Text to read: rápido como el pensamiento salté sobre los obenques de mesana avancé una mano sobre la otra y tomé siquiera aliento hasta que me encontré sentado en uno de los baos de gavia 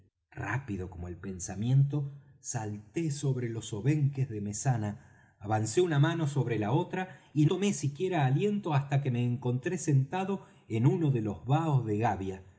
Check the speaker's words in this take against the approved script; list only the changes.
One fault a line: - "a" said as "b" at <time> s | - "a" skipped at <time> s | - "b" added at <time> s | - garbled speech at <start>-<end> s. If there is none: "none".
none